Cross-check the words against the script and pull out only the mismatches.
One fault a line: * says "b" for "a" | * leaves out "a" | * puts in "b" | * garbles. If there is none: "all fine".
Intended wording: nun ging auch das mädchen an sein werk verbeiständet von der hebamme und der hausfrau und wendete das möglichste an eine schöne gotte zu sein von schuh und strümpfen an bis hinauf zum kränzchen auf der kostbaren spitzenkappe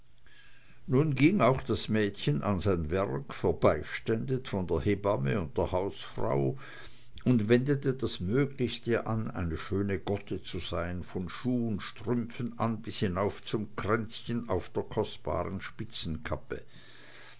all fine